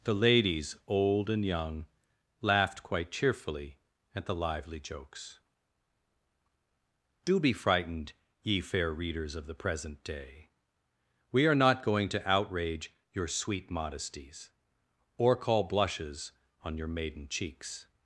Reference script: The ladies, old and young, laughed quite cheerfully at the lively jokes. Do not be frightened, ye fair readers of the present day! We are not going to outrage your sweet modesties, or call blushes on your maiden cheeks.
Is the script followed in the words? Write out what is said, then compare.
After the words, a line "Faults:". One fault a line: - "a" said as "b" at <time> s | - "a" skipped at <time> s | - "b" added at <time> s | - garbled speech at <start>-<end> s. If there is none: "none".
The ladies, old and young, laughed quite cheerfully at the lively jokes. Do be frightened, ye fair readers of the present day! We are not going to outrage your sweet modesties, or call blushes on your maiden cheeks.
Faults:
- "not" skipped at 7.4 s